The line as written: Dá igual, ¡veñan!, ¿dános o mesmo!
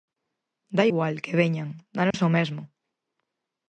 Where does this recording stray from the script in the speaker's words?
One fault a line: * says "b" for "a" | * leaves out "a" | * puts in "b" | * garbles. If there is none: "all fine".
* puts in "que"